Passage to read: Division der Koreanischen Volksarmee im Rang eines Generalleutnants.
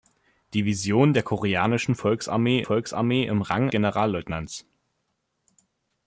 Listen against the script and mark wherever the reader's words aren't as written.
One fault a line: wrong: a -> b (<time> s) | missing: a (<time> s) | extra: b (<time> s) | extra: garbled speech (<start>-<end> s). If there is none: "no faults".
extra: Volksarmee (2.6 s)
missing: eines (3.7 s)